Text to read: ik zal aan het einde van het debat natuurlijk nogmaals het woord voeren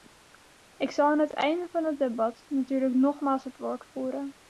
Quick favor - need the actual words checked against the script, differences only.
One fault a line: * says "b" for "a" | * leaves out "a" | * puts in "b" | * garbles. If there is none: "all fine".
all fine